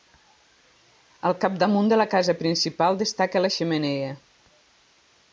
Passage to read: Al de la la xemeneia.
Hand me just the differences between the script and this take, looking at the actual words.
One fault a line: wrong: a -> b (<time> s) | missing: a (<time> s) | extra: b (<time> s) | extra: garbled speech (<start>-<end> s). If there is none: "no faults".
extra: capdamunt (1.4 s)
extra: casa principal destaca (2.1 s)